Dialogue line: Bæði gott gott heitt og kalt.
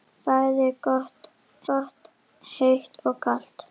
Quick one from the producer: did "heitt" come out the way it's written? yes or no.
yes